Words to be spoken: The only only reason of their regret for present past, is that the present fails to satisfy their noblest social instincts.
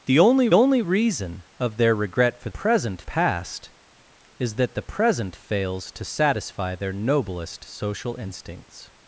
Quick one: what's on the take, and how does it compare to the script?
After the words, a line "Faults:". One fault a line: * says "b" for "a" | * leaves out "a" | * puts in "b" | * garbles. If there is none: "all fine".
The only only reason of their regret for present past, is that the present fails to satisfy their noblest social instincts.
Faults:
all fine